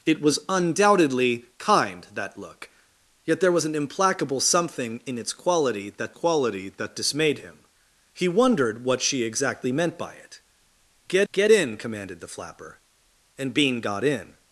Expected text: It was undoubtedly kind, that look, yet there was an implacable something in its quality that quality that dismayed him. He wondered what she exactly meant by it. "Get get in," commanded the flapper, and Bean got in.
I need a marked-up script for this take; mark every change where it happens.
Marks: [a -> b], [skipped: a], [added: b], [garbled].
It was undoubtedly kind, that look, yet there was an implacable something in its quality that quality that dismayed him. He wondered what she exactly meant by it. "Get get in," commanded the flapper, and Bean got in.